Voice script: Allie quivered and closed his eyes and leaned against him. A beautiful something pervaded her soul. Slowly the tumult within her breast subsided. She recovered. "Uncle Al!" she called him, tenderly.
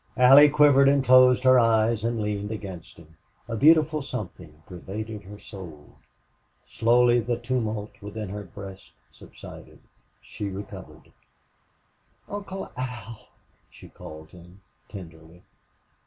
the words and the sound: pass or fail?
fail